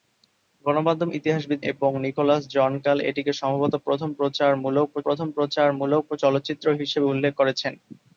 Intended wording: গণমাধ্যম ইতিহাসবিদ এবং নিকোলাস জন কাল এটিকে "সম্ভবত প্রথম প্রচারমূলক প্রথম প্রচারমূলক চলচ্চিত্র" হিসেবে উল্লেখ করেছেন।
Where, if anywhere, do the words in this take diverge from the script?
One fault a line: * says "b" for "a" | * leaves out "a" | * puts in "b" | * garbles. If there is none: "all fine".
all fine